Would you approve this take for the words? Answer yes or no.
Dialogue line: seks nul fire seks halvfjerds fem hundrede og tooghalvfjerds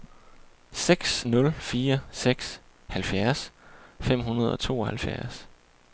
yes